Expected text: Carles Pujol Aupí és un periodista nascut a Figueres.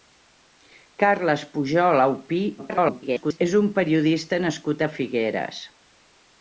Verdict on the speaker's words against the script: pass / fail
fail